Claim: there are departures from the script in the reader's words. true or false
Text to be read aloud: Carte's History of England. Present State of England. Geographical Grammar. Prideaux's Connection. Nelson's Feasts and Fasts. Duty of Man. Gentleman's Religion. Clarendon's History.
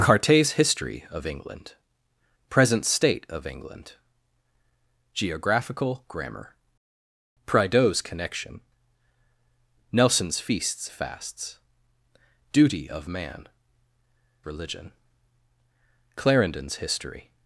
true